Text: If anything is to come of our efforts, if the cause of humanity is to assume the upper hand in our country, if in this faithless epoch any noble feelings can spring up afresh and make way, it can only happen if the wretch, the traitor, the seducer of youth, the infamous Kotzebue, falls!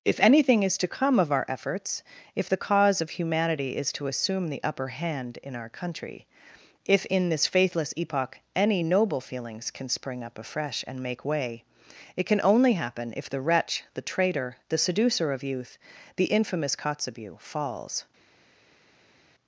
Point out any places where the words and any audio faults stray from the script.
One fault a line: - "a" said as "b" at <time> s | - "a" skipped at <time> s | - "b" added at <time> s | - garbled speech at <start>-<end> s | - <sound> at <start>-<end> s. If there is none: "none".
none